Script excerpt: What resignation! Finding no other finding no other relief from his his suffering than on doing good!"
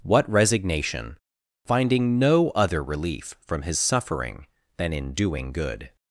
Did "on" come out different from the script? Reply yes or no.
yes